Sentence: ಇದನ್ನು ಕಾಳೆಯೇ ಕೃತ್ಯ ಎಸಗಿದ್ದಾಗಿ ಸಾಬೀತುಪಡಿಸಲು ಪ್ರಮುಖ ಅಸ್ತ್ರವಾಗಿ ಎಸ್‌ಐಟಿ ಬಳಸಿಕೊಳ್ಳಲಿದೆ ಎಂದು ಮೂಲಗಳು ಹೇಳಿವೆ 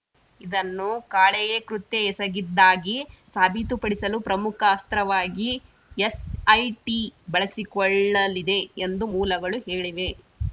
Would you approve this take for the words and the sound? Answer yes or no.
yes